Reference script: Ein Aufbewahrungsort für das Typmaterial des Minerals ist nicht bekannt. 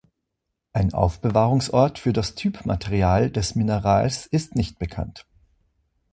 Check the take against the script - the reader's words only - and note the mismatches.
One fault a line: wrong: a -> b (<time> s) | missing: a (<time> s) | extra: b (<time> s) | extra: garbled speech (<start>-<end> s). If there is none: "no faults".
no faults